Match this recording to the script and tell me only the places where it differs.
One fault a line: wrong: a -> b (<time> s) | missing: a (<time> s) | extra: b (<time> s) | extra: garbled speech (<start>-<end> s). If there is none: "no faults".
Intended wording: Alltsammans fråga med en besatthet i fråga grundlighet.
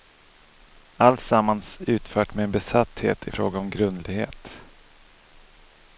wrong: fråga -> utfört (1.8 s)
extra: om (3.6 s)